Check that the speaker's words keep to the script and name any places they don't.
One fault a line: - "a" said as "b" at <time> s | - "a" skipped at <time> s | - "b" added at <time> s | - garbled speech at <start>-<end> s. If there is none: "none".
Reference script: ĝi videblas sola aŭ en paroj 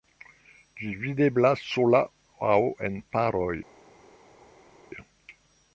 none